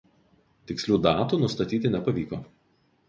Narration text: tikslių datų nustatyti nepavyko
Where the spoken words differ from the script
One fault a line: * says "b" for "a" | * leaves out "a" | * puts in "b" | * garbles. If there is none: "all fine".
all fine